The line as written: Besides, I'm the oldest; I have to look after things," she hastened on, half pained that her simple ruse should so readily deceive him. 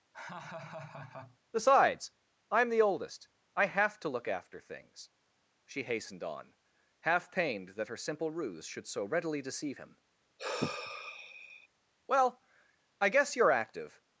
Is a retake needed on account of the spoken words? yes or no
yes